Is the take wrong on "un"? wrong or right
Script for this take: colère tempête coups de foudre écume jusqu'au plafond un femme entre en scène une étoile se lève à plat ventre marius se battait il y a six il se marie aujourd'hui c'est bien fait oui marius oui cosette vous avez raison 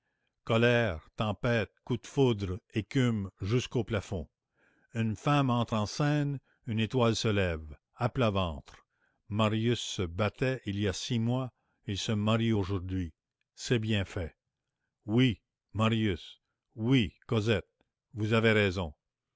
wrong